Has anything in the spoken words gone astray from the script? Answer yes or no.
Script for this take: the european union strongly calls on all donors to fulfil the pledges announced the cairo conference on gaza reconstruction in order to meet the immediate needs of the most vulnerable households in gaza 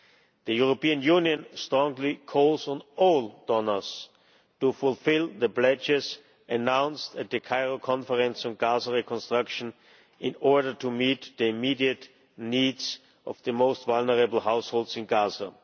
yes